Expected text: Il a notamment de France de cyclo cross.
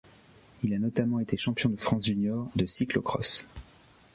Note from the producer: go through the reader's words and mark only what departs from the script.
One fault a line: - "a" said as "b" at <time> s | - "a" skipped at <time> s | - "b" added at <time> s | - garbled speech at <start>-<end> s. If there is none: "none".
- "été champion" added at 1.2 s
- "junior" added at 2.1 s